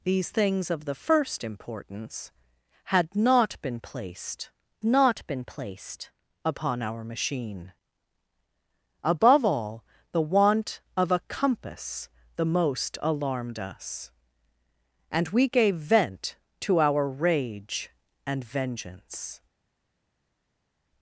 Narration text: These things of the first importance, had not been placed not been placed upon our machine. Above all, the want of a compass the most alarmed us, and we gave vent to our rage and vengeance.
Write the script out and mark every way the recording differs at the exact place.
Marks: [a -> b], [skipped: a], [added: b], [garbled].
These things of the first importance, had not been placed not been placed upon our machine. Above all, the want of a compass the most alarmed us, and we gave vent to our rage and vengeance.